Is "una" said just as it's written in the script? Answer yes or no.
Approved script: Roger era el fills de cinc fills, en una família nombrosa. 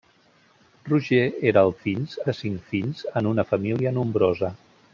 yes